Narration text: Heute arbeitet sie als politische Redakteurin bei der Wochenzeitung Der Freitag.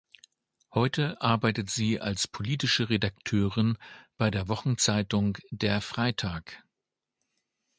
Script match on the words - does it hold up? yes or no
yes